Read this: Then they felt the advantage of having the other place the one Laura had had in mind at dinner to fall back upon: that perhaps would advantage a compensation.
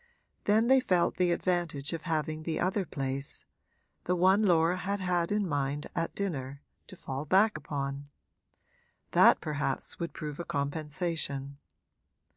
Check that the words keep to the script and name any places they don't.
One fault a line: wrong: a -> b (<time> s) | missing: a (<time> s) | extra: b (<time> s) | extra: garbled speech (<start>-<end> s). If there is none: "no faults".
wrong: advantage -> prove (10.1 s)